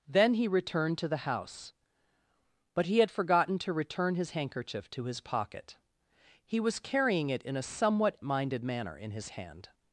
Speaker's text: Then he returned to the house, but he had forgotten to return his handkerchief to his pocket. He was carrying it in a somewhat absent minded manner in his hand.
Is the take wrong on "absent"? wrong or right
wrong